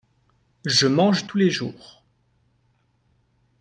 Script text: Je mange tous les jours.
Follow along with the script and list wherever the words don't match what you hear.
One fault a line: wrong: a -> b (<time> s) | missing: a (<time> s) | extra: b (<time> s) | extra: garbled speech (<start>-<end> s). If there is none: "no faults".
no faults